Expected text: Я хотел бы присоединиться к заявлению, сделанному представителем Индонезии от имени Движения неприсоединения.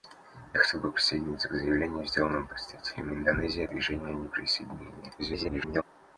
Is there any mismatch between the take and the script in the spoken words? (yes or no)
yes